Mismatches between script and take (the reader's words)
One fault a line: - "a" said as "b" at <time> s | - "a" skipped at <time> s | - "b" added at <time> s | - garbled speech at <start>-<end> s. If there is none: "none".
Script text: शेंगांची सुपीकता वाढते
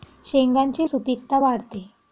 none